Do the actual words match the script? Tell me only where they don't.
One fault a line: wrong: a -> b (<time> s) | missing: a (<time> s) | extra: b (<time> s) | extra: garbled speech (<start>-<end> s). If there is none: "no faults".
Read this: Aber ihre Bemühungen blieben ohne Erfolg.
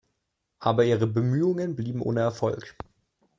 no faults